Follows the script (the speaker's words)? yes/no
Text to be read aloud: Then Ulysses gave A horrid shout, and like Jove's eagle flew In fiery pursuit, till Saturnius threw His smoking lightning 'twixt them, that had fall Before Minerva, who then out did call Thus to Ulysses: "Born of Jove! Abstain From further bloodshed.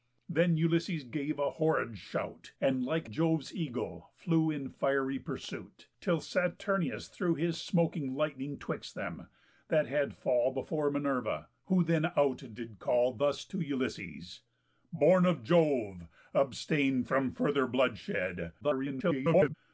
no